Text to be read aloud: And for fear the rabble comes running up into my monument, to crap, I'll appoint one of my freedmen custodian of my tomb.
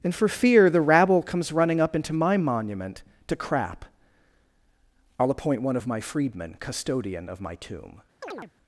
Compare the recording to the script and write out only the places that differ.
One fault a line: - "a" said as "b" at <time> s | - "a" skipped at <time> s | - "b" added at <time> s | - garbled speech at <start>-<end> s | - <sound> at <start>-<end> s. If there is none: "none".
- chirp at 8.2-8.5 s